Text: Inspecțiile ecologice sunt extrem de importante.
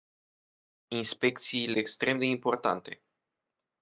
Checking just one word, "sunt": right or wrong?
wrong